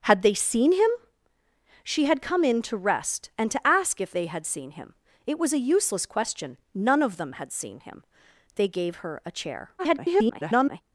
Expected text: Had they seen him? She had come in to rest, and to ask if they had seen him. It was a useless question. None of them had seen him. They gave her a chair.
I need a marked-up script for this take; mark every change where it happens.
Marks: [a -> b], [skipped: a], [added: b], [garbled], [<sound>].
Had they seen him? She had come in to rest, and to ask if they had seen him. It was a useless question. None of them had seen him. They gave her a chair. [garbled]